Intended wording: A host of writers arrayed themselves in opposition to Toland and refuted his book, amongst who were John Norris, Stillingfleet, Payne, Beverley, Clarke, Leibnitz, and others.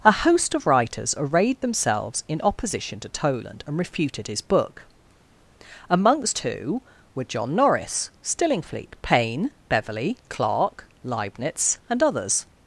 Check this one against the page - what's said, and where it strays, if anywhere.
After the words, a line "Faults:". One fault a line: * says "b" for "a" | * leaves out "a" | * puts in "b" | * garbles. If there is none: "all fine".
A host of writers arrayed themselves in opposition to Toland and refuted his book, amongst who were John Norris, Stillingfleet, Payne, Beverley, Clarke, Leibnitz, and others.
Faults:
all fine